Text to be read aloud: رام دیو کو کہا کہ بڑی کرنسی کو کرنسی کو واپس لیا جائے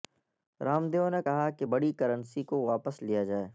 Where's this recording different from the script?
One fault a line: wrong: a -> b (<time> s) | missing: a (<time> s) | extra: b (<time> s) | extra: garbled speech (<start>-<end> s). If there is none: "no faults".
wrong: کو -> نے (1.1 s)
missing: کرنسی کو (2.6 s)